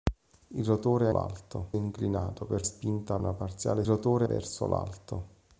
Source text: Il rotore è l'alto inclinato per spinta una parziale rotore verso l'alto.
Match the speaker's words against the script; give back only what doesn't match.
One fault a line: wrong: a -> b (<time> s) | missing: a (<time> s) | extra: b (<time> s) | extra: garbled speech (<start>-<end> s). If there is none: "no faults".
no faults